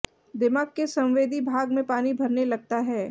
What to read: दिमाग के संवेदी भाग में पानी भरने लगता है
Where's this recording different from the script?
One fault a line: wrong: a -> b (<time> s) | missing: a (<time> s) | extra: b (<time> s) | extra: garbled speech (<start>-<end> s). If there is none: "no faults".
no faults